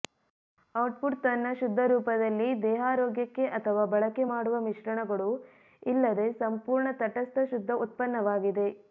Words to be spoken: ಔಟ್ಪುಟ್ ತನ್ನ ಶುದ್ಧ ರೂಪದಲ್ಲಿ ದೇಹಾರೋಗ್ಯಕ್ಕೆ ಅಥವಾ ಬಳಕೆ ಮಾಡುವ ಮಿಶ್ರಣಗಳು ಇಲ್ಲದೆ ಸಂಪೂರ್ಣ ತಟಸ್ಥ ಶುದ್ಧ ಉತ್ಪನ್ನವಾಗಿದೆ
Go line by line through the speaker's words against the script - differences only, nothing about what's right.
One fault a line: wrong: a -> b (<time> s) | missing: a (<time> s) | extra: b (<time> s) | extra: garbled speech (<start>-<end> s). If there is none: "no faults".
no faults